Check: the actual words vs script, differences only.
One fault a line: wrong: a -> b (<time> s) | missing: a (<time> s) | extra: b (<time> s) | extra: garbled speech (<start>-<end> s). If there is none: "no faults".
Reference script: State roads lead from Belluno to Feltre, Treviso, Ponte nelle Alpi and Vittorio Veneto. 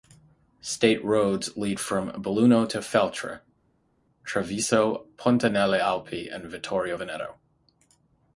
no faults